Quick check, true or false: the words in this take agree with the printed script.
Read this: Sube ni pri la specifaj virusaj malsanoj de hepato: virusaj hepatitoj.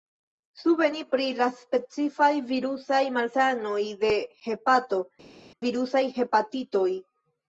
true